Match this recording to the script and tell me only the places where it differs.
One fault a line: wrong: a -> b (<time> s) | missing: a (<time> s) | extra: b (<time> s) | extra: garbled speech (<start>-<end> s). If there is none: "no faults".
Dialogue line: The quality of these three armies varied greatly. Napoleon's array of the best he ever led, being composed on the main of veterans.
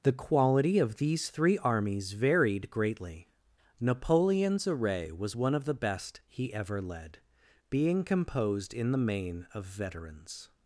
extra: was one (5.1 s)
wrong: on -> in (8.7 s)